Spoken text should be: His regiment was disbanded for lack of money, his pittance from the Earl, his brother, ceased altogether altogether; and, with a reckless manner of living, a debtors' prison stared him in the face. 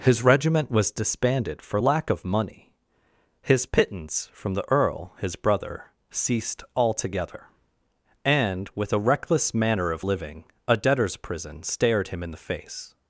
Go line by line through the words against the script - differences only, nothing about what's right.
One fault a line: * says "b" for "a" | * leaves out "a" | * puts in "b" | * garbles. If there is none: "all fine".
* leaves out "altogether"